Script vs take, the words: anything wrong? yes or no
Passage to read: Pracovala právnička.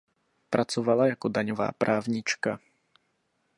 yes